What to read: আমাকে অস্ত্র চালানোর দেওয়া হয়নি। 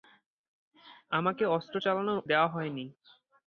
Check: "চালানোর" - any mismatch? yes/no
no